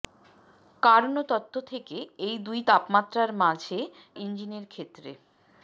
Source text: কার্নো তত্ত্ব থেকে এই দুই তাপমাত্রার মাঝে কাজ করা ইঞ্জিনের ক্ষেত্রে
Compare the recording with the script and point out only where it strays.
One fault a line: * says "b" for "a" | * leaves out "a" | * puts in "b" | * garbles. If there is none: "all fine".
* leaves out "কাজ করা"